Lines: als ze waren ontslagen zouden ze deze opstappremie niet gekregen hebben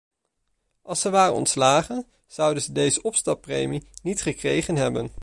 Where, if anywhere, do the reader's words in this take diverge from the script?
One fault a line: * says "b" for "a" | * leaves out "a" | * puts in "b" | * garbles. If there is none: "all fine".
all fine